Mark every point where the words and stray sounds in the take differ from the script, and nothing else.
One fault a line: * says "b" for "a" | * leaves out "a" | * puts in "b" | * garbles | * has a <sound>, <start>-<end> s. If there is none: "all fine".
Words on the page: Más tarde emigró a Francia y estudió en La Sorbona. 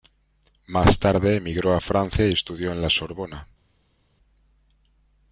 all fine